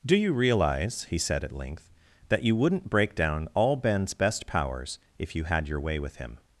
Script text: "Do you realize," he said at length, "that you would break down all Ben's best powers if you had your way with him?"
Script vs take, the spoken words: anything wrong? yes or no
yes